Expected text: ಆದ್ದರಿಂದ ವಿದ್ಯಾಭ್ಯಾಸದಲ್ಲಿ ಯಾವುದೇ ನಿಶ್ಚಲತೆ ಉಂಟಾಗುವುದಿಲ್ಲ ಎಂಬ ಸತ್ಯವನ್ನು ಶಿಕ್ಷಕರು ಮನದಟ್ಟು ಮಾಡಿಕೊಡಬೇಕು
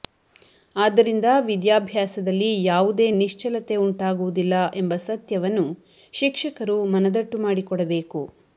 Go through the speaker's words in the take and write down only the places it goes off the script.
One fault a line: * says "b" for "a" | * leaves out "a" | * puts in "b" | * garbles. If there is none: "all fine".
all fine